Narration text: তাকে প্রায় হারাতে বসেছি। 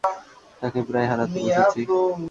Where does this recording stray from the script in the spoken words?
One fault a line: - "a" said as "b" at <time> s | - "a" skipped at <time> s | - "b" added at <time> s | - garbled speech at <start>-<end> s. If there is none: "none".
none